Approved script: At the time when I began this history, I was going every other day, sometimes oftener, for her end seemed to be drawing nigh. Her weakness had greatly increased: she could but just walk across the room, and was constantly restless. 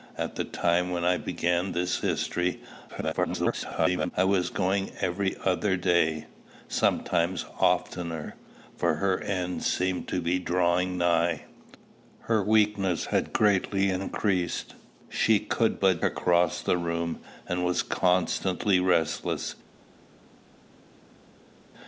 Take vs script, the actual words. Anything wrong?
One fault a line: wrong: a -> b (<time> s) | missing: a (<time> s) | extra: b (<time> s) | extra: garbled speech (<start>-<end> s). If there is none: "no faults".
extra: garbled speech (2.9-4.1 s)
missing: just walk (16.0 s)